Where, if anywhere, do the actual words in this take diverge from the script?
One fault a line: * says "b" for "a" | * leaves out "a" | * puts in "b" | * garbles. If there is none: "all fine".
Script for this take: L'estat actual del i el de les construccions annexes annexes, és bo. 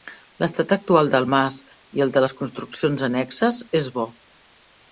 * puts in "mas"
* leaves out "annexes"